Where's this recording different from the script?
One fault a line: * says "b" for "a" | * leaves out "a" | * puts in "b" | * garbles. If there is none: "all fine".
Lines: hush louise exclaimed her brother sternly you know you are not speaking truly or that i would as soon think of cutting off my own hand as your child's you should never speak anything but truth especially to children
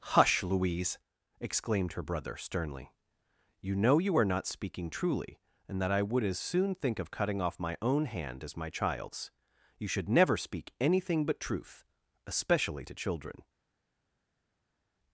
* says "and" for "or"
* says "my" for "your"